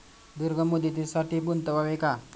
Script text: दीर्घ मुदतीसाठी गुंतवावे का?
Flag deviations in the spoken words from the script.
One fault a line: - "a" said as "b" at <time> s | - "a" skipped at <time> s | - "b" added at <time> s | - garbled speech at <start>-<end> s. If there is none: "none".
none